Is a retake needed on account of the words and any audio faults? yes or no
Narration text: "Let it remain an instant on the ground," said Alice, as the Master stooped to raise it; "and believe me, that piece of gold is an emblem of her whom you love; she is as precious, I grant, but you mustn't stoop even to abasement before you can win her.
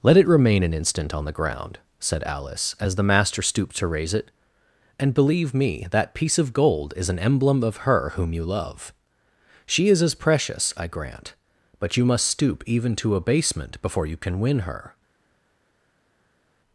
yes